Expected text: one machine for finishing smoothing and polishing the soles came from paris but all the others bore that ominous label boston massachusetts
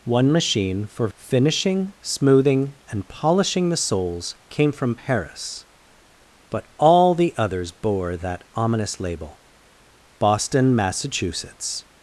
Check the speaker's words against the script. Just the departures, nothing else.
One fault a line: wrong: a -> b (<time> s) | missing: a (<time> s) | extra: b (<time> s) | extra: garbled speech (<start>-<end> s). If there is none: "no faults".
no faults